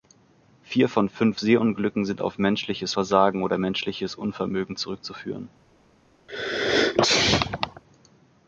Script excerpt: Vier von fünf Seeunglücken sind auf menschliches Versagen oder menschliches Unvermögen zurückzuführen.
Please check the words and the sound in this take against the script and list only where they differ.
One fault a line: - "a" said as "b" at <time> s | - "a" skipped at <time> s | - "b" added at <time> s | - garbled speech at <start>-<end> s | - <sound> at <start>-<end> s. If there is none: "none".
- sneeze at 6.3-7.8 s